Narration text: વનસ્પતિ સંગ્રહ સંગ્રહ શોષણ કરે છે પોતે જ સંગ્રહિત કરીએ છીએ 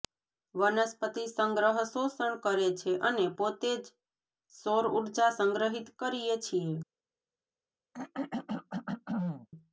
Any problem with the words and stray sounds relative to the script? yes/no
yes